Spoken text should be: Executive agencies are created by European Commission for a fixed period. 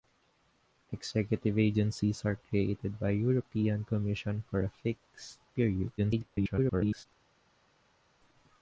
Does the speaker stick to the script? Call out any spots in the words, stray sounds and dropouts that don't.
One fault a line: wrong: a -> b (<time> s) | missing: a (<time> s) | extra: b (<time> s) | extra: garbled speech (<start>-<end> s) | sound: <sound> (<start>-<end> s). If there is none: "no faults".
extra: garbled speech (6.0-7.1 s)